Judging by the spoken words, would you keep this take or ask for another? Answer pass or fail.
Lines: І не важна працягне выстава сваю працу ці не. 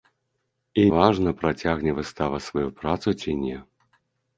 fail